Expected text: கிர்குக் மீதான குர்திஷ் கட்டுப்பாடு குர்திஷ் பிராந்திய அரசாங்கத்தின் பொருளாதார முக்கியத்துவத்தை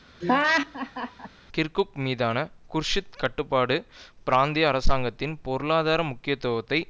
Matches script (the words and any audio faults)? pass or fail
fail